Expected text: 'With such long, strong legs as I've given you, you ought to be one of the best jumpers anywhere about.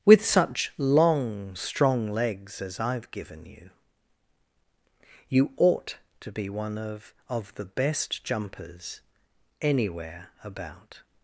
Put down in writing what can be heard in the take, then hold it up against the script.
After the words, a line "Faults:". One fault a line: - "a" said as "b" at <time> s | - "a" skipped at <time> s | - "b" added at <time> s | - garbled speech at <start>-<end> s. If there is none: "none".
'With such long, strong legs as I've given you, you ought to be one of of the best jumpers anywhere about.
Faults:
- "of" added at 7.3 s